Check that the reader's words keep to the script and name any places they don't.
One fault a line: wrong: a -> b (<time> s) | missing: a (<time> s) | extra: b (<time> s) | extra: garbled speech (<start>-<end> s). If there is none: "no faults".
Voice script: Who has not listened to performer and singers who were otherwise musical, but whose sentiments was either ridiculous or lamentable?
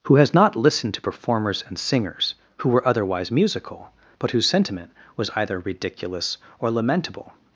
wrong: performer -> performers (1.0 s)
wrong: sentiments -> sentiment (4.5 s)